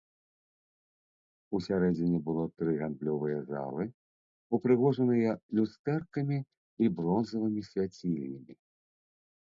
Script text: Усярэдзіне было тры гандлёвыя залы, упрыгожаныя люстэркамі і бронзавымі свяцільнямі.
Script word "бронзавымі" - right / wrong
right